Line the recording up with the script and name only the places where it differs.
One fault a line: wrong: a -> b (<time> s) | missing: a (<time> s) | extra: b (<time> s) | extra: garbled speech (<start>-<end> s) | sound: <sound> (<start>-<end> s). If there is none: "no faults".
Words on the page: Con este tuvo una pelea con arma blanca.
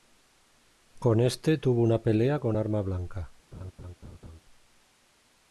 sound: laugh (3.5-4.4 s)